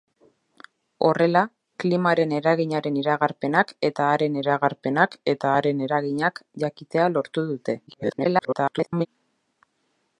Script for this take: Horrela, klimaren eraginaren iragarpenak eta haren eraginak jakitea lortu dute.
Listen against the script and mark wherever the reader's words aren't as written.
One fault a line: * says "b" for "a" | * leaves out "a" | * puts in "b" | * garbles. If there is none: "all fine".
* puts in "iragarpenak eta haren"
* garbles